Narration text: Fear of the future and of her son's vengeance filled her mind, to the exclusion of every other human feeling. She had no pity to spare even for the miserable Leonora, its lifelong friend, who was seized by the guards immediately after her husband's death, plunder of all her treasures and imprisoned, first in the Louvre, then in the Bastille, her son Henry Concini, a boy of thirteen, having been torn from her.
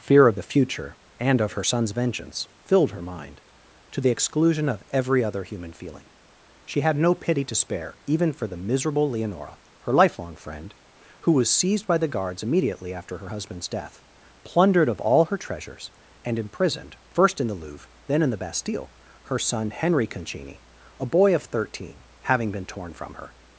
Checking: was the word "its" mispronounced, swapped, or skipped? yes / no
yes